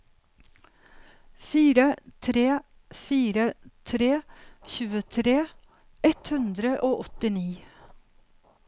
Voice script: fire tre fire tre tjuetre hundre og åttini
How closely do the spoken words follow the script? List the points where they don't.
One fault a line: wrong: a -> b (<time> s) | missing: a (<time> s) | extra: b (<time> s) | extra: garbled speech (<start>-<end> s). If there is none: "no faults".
extra: ett (6.1 s)